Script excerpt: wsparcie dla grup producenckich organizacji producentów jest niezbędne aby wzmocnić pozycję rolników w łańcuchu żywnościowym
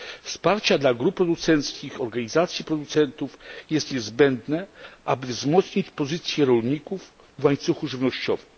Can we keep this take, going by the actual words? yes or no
yes